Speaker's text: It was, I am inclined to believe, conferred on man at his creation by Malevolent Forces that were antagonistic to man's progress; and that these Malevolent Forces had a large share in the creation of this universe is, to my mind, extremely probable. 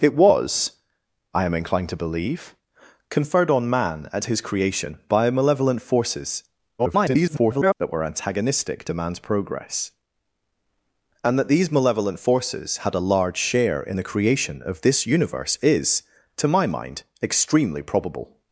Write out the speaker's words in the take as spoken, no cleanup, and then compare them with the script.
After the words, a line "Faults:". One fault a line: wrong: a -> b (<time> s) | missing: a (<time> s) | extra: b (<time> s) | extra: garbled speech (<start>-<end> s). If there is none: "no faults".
It was, I am inclined to believe, conferred on man at his creation by Malevolent Forces [garbled] that were antagonistic to man's progress; and that these Malevolent Forces had a large share in the creation of this universe is, to my mind, extremely probable.
Faults:
extra: garbled speech (6.8-7.7 s)